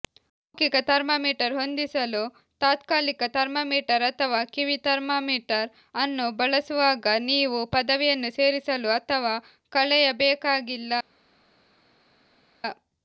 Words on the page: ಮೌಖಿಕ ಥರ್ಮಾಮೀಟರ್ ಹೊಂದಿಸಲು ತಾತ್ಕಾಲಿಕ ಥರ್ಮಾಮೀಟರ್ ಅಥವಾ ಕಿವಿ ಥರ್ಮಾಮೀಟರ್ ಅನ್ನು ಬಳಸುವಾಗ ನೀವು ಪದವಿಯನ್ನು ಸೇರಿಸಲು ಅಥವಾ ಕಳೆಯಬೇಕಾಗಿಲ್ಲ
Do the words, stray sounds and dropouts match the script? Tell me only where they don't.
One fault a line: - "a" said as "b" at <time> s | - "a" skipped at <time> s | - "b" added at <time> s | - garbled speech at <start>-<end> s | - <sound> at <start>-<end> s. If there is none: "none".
none